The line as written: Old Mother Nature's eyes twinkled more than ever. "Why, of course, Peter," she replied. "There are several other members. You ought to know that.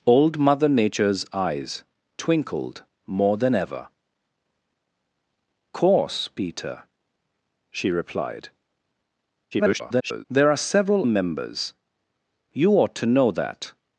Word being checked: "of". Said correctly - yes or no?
no